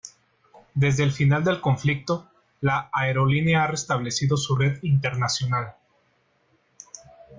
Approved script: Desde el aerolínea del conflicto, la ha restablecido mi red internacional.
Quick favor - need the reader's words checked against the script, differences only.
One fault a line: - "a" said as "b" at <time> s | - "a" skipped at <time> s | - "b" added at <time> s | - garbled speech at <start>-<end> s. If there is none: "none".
- "aerolínea" said as "final" at 1.1 s
- "aerolínea" added at 2.9 s
- "mi" said as "su" at 4.3 s